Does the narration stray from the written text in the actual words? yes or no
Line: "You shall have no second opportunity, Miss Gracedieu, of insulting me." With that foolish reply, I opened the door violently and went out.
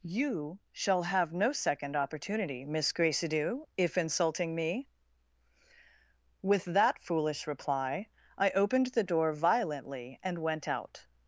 yes